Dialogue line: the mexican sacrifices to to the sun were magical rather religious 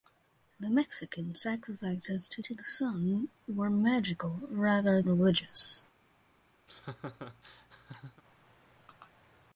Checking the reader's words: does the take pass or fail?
pass